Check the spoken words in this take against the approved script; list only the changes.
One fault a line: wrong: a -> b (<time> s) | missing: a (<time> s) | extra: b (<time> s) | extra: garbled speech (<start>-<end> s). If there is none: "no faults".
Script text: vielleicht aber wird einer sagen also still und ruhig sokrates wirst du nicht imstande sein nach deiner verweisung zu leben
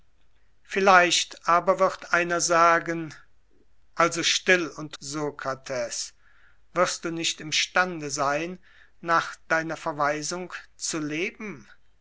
missing: ruhig (5.0 s)